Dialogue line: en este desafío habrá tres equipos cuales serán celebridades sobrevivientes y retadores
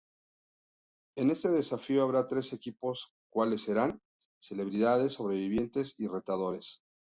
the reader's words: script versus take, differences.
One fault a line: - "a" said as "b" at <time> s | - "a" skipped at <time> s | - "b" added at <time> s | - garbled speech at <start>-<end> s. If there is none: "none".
none